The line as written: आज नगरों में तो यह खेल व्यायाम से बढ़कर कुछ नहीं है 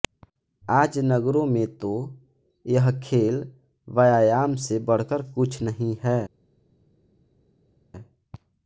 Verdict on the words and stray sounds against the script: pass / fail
pass